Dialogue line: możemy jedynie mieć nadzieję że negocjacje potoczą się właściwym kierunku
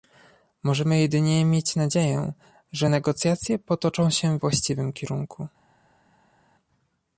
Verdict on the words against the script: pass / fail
pass